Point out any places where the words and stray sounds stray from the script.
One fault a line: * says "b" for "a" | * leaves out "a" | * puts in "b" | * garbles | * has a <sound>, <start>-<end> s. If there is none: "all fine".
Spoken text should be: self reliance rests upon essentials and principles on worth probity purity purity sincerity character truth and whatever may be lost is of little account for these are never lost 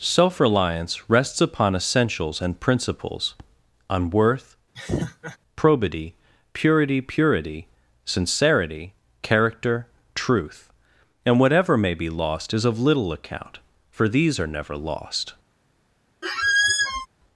* has a laugh, 4.7-5.4 s
* has a squeak, 16.2-17.1 s